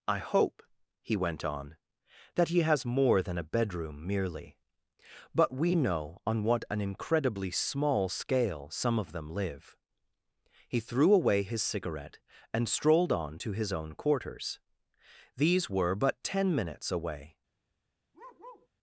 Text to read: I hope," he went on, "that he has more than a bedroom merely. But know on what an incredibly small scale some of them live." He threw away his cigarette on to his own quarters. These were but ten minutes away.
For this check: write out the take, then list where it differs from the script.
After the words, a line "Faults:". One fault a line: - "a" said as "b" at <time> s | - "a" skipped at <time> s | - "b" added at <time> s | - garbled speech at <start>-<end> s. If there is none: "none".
I hope," he went on, "that he has more than a bedroom merely. But we know on what an incredibly small scale some of them live." He threw away his cigarette and strolled on to his own quarters. These were but ten minutes away.
Faults:
- "we" added at 5.5 s
- "and strolled" added at 12.5 s